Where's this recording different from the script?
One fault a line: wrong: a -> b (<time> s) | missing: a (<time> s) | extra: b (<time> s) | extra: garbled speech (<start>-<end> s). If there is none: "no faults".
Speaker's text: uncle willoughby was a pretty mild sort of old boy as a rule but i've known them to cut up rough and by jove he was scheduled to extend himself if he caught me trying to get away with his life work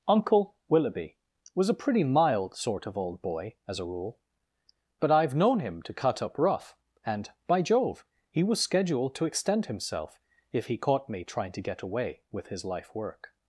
wrong: them -> him (5.6 s)